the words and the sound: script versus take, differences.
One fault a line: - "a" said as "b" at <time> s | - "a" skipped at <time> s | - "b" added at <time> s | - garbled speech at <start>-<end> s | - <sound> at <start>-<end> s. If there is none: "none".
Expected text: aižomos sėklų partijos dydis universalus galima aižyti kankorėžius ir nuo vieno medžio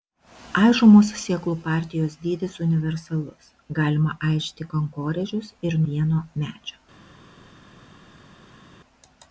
- "nuo" skipped at 5.8 s